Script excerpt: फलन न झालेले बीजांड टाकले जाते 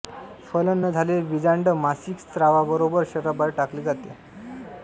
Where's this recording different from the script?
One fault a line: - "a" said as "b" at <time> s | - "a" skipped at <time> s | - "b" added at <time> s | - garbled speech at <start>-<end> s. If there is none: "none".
- "मासिक स्रावाबरोबर शरीराबाहेर" added at 1.8 s